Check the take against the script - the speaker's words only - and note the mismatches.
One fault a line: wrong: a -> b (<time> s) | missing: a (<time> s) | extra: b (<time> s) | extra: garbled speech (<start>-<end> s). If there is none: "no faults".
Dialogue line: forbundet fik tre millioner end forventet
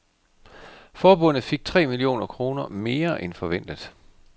extra: kroner mere (2.3 s)